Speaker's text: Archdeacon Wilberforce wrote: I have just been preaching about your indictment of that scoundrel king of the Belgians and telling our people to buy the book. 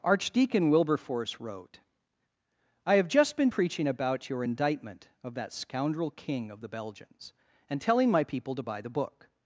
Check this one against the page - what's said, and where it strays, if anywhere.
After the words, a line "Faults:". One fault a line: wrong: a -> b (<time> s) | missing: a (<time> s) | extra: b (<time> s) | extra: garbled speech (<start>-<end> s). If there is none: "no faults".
Archdeacon Wilberforce wrote: I have just been preaching about your indictment of that scoundrel king of the Belgians and telling my people to buy the book.
Faults:
wrong: our -> my (8.1 s)